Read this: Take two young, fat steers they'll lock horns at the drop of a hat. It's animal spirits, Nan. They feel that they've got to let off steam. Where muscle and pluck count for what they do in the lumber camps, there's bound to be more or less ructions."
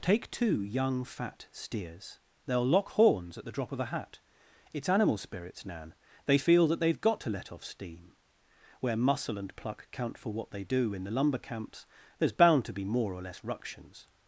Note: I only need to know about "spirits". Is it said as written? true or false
true